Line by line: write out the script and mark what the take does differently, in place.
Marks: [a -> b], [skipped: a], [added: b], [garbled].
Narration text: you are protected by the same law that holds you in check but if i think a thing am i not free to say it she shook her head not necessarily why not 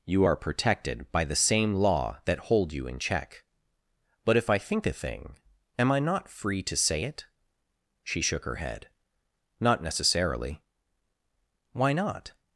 you are protected by the same law that [holds -> hold] you in check but if i think a thing am i not free to say it she shook her head not necessarily why not